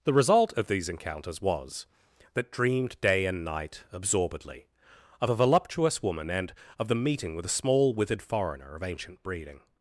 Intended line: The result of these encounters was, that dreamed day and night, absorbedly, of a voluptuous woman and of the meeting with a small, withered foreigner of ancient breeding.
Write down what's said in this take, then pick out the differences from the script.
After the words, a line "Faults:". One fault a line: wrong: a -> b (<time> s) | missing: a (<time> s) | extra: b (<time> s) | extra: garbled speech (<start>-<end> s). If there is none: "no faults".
The result of these encounters was, that dreamed day and night, absorbedly, of a voluptuous woman and of the meeting with a small, withered foreigner of ancient breeding.
Faults:
no faults